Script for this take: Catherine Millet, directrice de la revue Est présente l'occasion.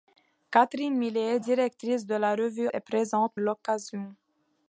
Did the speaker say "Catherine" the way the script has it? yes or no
yes